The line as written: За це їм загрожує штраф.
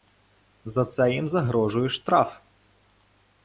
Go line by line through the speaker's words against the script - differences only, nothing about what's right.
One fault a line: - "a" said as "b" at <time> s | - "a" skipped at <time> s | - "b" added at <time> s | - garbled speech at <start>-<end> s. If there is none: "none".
none